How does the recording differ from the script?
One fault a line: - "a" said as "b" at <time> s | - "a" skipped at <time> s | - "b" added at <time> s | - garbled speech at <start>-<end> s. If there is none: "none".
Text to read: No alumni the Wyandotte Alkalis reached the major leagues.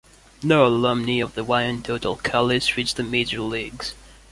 - "of" added at 1.2 s